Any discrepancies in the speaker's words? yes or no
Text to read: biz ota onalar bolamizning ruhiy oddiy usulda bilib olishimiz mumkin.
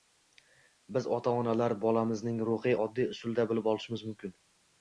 no